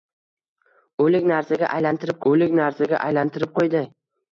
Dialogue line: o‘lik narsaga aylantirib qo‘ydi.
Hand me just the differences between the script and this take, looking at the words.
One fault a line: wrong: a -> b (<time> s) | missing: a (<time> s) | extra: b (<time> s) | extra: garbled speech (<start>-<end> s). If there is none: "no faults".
extra: o‘lik narsaga aylantirib (2.3 s)